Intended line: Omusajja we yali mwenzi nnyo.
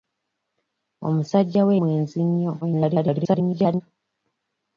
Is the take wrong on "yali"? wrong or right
wrong